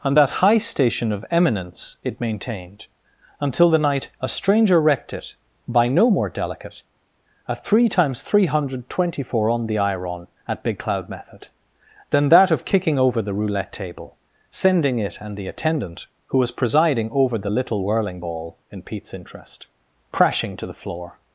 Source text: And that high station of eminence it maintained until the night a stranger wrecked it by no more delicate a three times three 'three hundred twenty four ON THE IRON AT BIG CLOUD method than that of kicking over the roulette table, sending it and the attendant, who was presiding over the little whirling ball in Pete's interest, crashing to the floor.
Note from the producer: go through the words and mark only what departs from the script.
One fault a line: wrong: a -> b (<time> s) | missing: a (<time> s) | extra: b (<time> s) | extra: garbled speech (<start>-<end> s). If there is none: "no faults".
missing: three (8.5 s)